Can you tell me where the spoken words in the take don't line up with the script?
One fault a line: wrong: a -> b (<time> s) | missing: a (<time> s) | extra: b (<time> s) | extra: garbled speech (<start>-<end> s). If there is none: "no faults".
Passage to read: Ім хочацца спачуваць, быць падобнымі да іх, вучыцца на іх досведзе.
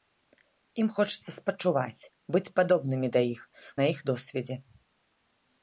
missing: вучыцца (3.4 s)